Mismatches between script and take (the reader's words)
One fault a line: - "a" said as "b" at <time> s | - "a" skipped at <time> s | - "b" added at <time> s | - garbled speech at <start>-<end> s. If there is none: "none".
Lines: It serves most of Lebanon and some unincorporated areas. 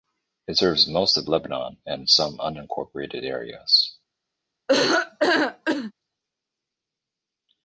none